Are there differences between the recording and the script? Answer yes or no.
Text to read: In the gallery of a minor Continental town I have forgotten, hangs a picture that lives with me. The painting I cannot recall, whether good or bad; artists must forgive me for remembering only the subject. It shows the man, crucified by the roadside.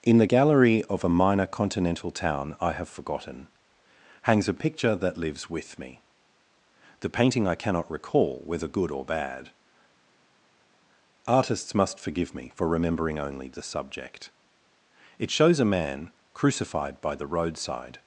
yes